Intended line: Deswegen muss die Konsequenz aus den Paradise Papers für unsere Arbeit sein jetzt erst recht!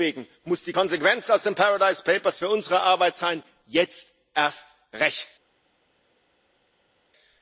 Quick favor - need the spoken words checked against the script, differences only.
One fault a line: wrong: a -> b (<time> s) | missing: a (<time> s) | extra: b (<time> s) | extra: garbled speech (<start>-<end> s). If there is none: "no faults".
no faults